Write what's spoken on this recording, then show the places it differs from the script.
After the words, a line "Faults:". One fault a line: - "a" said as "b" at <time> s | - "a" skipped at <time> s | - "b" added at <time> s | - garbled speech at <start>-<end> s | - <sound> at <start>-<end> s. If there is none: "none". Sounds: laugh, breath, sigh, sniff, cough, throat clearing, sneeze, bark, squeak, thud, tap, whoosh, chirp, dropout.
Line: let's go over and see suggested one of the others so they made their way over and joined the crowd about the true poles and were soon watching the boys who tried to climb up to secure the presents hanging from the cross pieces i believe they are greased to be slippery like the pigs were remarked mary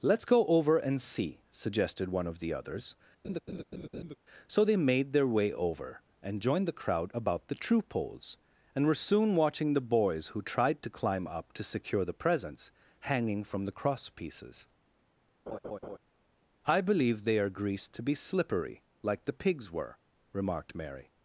let's go over and see suggested one of the others so they made their way over and joined the crowd about the true poles and were soon watching the boys who tried to climb up to secure the presents hanging from the cross pieces i believe they are greased to be slippery like the pigs were remarked mary
Faults:
- laugh at 3.2-4.2 s
- laugh at 15.5-16.0 s